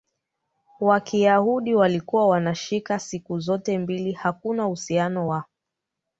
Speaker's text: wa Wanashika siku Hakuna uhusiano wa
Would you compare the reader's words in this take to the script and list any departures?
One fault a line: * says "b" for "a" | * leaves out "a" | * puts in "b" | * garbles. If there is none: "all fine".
* puts in "Kiyahudi walikuwa"
* puts in "zote mbili"